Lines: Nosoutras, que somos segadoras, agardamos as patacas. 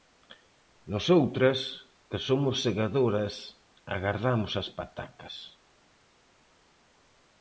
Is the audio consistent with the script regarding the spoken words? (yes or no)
yes